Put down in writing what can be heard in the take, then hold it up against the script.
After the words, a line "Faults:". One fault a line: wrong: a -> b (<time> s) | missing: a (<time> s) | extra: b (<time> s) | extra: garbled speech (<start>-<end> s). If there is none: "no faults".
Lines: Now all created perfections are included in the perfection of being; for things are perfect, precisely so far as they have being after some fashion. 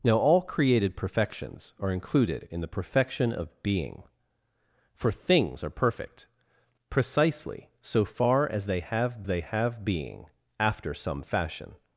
Now all created perfections are included in the perfection of being; for things are perfect, precisely so far as they have they have being after some fashion.
Faults:
extra: they have (9.3 s)